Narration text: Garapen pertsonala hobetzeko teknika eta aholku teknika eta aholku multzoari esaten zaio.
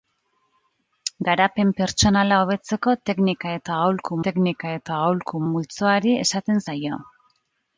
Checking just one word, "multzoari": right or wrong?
right